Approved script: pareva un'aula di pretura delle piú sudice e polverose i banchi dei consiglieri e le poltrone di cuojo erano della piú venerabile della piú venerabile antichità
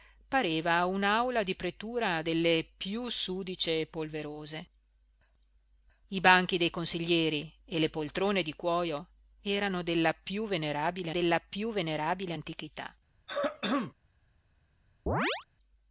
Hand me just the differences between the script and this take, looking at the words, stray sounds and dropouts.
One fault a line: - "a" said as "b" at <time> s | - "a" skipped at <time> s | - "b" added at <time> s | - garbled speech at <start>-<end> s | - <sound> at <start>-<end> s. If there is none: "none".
- throat clearing at 13.3-13.9 s
- chirp at 15.1-15.5 s